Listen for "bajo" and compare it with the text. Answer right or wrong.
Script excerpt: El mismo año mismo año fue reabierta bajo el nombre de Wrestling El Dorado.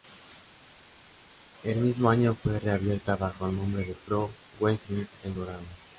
right